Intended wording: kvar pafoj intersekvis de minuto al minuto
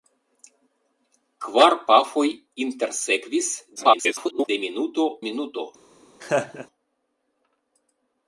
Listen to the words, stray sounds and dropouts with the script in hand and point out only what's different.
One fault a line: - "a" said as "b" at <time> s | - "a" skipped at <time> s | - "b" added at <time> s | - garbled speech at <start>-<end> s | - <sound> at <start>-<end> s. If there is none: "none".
- garbled speech at 3.8-4.5 s
- "al" skipped at 5.1 s
- laugh at 6.2-6.7 s